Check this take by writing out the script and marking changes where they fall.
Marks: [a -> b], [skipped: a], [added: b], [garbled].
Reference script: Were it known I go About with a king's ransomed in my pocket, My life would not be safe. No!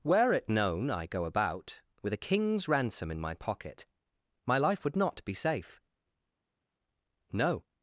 Were it known I go About with a king's [ransomed -> ransom] in my pocket, My life would not be safe. No!